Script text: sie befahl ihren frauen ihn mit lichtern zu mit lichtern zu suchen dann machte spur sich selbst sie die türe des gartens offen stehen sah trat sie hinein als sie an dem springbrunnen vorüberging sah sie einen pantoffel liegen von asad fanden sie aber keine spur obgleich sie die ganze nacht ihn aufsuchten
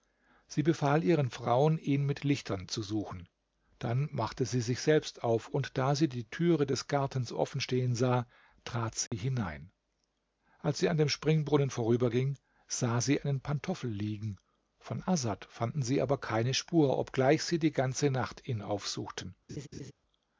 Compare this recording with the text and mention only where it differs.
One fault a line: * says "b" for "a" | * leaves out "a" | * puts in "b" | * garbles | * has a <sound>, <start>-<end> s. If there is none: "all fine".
* leaves out "mit lichtern zu"
* says "sie" for "spur"
* puts in "auf und da"
* has a dropout, 9.1-9.1 s
* has a laugh, 19.5-19.9 s